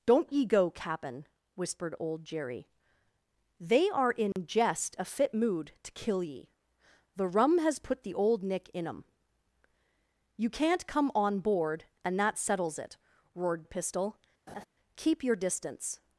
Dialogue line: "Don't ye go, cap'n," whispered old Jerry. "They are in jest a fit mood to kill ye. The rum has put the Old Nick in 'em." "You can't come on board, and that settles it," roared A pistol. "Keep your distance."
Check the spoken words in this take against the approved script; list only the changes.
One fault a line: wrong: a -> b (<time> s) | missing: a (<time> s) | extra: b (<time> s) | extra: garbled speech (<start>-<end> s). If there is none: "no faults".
no faults